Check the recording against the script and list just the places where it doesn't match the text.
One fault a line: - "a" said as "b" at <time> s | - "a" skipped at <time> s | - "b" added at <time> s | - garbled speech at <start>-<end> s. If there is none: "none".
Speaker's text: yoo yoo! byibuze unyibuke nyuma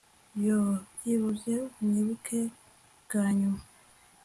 - "yoo" skipped at 0.7 s
- "bwa" added at 3.0 s